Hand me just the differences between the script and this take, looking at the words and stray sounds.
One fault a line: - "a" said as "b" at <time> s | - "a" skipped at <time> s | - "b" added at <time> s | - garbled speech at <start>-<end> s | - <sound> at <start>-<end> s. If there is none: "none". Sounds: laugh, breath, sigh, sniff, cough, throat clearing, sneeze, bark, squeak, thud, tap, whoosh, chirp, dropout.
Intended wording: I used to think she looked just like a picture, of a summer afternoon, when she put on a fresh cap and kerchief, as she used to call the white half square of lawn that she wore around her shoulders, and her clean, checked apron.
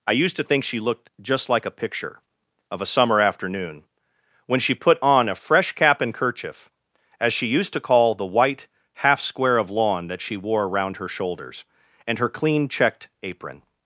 none